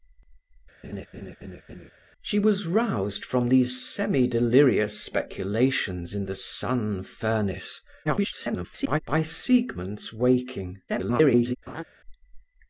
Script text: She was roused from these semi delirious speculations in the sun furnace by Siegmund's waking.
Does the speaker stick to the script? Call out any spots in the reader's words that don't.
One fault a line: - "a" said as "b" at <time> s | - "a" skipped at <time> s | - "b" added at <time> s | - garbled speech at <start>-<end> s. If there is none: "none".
- garbled speech at 8.0-9.0 s
- garbled speech at 10.9-11.6 s